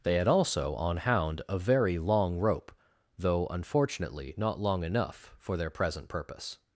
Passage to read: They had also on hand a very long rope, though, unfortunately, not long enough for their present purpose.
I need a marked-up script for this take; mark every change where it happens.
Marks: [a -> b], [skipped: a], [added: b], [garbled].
They had also on [hand -> hound] a very long rope, though, unfortunately, not long enough for their present purpose.